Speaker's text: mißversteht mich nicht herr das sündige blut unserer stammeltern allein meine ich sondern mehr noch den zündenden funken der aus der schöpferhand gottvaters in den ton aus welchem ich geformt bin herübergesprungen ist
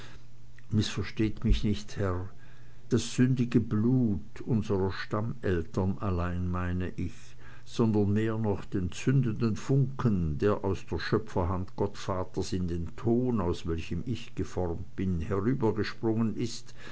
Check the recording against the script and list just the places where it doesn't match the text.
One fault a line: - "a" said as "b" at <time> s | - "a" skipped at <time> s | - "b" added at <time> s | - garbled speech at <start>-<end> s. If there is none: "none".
none